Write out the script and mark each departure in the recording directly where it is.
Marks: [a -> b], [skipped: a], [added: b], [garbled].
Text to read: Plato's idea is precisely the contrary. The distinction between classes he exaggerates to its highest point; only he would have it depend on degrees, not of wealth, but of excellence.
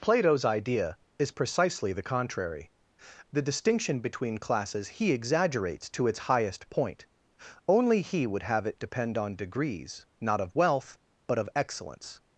Plato's idea is precisely the contrary. The distinction between classes he exaggerates to its highest point; only he would have it depend on degrees, not of wealth, but of excellence.